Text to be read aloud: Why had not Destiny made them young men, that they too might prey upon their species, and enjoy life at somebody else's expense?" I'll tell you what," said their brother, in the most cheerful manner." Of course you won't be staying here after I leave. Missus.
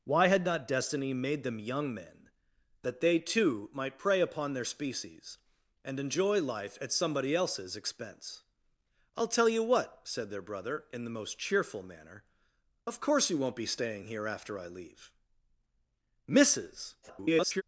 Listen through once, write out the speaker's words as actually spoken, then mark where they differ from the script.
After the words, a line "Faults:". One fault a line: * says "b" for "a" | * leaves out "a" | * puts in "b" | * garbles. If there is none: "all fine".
Why had not Destiny made them young men, that they too might prey upon their species, and enjoy life at somebody else's expense?" I'll tell you what," said their brother, in the most cheerful manner." Of course you won't be staying here after I leave. Missus. [garbled]
Faults:
* garbles